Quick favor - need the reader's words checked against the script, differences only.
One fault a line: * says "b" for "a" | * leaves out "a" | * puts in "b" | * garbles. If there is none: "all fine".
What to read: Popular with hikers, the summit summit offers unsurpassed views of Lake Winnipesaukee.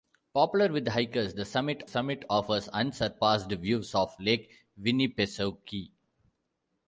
all fine